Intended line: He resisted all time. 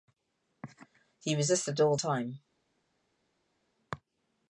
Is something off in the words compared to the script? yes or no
no